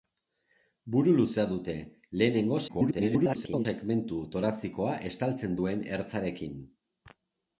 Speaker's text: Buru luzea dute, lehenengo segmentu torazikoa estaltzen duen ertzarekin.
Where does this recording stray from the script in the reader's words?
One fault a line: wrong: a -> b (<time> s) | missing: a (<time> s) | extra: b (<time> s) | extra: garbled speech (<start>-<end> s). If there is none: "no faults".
extra: garbled speech (2.7-3.7 s)